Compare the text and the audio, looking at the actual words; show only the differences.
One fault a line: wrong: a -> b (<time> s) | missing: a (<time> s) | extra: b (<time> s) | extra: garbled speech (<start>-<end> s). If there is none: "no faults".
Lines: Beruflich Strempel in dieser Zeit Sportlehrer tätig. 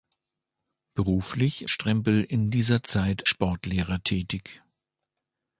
no faults